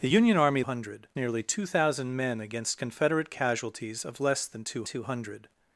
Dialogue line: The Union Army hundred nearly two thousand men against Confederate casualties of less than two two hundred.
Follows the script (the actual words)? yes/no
yes